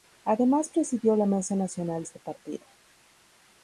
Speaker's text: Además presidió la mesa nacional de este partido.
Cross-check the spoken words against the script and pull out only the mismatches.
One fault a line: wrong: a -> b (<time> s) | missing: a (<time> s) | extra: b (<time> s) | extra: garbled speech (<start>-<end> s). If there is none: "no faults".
missing: de (2.0 s)